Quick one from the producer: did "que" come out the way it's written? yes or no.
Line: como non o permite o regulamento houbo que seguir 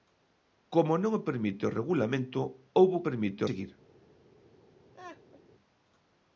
no